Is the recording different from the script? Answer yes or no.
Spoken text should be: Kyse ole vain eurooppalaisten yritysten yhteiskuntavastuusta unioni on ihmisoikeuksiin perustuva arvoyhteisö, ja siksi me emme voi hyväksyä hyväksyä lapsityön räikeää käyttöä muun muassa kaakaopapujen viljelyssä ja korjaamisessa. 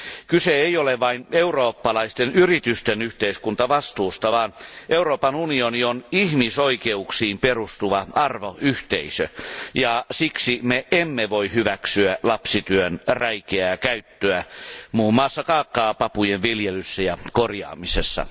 yes